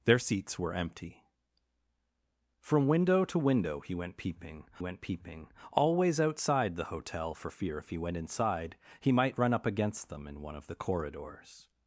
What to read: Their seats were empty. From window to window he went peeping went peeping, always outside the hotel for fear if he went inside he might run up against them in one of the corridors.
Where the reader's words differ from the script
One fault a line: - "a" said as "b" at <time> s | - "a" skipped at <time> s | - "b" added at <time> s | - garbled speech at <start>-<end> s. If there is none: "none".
none